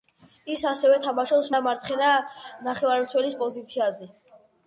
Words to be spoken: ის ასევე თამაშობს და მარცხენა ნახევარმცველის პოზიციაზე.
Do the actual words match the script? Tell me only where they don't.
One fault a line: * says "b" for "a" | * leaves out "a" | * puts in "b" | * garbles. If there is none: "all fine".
all fine